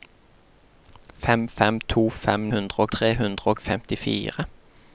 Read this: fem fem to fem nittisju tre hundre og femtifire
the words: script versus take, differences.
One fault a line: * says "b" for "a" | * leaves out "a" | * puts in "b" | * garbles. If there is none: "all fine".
* says "hundre" for "nittisju"